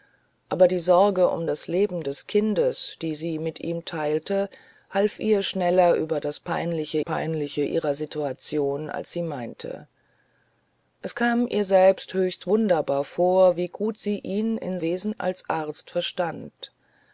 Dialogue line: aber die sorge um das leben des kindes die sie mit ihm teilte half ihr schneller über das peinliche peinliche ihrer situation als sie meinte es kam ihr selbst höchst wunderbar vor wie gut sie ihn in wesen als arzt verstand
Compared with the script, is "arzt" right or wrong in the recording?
right